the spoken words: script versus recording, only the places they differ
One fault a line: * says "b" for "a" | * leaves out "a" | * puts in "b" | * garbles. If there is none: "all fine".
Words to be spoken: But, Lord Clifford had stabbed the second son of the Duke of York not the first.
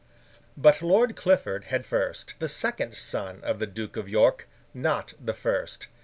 * says "first" for "stabbed"